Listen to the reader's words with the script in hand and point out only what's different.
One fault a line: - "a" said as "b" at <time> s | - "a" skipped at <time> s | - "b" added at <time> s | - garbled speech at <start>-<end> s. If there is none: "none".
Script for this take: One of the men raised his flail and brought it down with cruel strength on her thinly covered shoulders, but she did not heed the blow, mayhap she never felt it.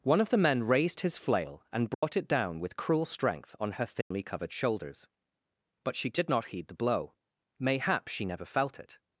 none